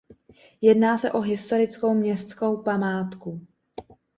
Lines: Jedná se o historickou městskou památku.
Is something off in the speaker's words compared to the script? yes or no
no